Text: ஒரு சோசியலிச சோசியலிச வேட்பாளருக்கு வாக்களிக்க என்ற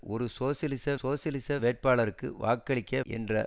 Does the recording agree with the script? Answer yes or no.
yes